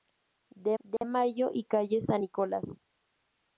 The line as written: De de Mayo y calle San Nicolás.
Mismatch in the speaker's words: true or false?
false